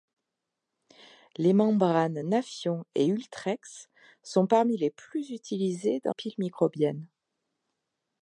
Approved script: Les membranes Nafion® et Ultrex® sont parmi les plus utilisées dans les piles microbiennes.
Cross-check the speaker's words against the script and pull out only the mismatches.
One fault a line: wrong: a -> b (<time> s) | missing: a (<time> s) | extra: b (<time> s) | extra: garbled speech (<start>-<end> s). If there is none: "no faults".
missing: les (6.1 s)